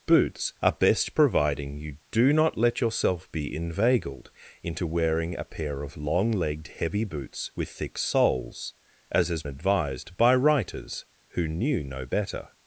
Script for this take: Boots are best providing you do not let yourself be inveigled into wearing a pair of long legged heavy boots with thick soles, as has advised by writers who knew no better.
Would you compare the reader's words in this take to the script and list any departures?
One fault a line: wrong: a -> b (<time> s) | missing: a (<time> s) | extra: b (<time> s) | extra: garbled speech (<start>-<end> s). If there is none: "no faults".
no faults